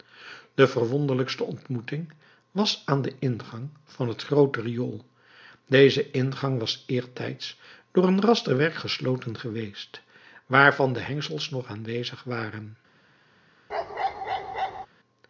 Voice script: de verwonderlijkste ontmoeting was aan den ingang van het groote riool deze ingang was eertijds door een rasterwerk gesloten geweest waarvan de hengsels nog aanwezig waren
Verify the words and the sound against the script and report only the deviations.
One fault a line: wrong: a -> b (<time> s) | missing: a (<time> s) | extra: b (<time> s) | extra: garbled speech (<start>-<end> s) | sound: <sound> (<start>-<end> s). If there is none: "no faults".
sound: bark (13.7-14.9 s)